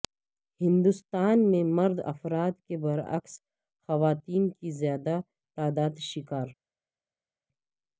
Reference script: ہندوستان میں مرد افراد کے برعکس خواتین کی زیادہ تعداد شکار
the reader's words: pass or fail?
pass